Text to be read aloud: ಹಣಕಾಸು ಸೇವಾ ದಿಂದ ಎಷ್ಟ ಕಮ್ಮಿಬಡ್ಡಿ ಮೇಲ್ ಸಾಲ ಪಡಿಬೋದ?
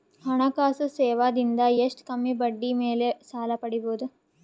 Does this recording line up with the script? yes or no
yes